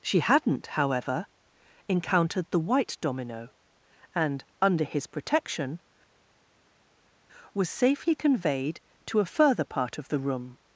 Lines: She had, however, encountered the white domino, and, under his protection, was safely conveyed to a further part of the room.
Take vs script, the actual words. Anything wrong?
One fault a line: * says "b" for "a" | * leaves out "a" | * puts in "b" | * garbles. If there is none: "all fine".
* says "hadn't" for "had"